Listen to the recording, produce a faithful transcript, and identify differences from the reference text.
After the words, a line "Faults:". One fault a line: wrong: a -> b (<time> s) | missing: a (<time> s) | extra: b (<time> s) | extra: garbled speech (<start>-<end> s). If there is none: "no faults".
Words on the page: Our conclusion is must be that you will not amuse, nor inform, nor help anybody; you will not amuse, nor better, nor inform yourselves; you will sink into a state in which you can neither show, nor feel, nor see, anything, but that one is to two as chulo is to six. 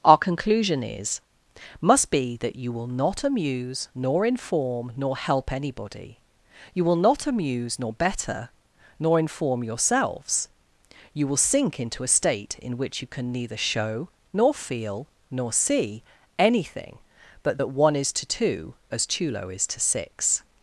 Our conclusion is must be that you will not amuse, nor inform, nor help anybody; you will not amuse, nor better, nor inform yourselves; you will sink into a state in which you can neither show, nor feel, nor see, anything, but that one is to two as chulo is to six.
Faults:
no faults